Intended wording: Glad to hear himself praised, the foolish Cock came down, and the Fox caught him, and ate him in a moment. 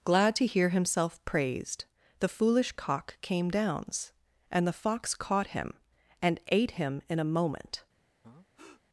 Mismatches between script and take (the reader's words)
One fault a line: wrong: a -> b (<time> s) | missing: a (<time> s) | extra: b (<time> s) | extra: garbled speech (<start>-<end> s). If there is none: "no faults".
wrong: down -> downs (3.5 s)